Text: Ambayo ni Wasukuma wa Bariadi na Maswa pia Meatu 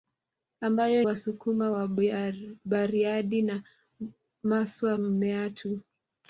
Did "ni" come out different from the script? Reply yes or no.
yes